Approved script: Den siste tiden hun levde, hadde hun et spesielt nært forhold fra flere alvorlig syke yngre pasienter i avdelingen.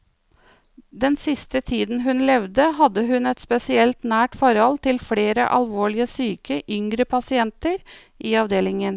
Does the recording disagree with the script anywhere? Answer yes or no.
yes